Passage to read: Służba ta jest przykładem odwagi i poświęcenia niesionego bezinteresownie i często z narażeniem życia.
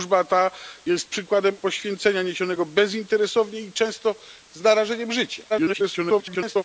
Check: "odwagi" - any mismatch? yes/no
yes